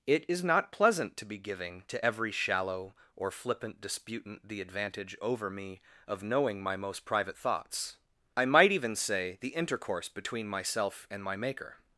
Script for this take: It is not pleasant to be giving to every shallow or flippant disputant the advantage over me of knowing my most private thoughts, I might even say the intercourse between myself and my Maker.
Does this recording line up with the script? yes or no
yes